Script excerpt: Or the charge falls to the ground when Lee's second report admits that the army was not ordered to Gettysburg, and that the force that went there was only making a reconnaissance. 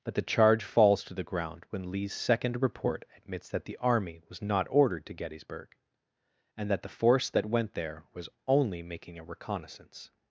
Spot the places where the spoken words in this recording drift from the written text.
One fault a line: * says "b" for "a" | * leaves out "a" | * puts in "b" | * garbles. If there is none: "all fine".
* says "But" for "Or"